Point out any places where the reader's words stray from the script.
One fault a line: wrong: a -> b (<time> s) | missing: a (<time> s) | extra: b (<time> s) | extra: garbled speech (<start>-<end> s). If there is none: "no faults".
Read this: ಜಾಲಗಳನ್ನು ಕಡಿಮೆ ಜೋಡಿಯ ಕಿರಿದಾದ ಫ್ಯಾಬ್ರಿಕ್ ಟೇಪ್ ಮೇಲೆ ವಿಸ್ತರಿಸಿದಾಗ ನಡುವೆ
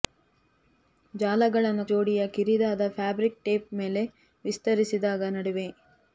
missing: ಕಡಿಮೆ (1.9 s)